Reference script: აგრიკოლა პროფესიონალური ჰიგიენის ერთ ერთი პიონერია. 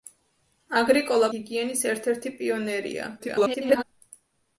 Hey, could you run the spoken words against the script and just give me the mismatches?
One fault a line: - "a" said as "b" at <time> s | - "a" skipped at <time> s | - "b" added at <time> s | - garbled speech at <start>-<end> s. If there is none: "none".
- "პროფესიონალური" skipped at 1.3 s
- garbled speech at 3.2-3.8 s